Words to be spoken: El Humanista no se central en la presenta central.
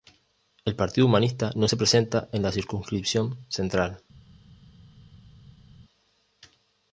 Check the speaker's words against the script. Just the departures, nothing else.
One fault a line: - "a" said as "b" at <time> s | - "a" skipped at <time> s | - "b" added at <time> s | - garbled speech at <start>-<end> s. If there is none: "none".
- "Partido" added at 0.8 s
- "central" said as "presenta" at 1.7 s
- "presenta" said as "circunscripción" at 2.5 s